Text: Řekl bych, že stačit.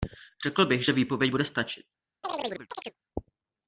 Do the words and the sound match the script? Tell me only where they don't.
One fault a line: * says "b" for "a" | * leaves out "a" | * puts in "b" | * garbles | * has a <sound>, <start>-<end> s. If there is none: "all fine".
* puts in "výpověď bude"
* has a chirp, 2.2-3.0 s